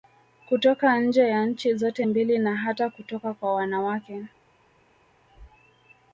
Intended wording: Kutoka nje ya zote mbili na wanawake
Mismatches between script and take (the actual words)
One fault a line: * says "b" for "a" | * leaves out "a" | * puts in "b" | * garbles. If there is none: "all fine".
* puts in "nchi"
* puts in "hata kutoka kwa"